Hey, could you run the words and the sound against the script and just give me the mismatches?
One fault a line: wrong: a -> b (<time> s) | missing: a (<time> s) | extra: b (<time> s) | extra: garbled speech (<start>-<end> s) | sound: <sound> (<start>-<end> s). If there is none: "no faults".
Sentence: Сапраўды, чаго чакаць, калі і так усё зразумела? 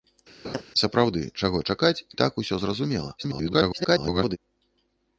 sound: laugh (0.4-0.6 s)
missing: калі (2.0 s)
extra: garbled speech (3.2-4.4 s)